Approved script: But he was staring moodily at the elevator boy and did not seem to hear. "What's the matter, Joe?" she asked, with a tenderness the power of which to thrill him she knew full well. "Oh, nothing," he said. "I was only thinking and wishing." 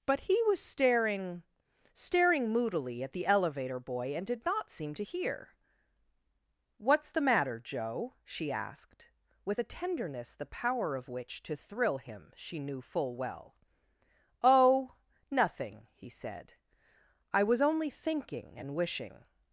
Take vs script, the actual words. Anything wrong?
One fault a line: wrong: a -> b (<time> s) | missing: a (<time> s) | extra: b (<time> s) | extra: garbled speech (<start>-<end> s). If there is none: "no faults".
extra: staring (1.9 s)